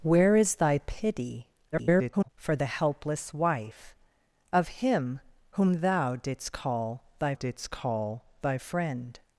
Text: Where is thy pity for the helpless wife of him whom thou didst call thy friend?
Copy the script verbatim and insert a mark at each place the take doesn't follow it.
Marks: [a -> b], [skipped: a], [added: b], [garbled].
Where is thy pity [garbled] for the helpless wife of him whom thou didst call thy [added: didst call thy] friend?